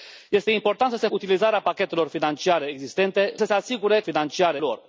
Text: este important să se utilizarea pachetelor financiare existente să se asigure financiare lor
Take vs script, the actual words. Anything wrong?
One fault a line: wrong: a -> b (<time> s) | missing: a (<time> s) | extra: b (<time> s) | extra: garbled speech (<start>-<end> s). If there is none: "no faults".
no faults